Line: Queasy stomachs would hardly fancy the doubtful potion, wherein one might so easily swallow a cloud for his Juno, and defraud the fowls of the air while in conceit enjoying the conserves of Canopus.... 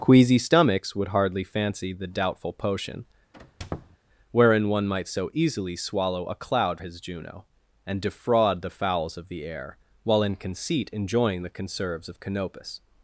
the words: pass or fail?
fail